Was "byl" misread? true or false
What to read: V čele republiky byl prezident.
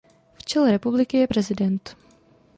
true